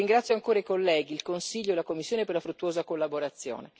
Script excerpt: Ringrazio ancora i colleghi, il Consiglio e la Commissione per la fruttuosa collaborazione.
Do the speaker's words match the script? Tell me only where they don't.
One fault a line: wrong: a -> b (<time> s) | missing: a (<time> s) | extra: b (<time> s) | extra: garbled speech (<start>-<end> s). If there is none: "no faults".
no faults